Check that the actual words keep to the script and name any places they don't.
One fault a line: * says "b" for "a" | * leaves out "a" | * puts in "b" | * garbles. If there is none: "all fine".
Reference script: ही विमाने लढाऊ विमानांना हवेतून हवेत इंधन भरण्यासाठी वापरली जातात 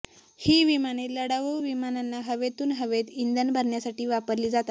all fine